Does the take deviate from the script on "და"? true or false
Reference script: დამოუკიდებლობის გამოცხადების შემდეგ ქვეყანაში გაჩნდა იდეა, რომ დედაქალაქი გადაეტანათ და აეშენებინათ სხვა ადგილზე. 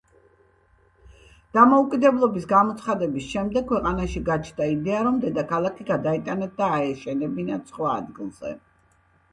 false